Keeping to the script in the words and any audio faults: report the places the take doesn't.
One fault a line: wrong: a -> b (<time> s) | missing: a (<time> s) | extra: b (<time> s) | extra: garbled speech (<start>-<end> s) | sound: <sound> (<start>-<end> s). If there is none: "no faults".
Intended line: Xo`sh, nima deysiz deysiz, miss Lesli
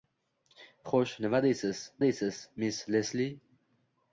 no faults